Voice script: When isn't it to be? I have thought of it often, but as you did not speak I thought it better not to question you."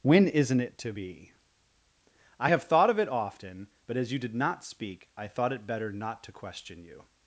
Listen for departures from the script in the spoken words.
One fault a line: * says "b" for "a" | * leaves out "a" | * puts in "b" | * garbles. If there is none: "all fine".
all fine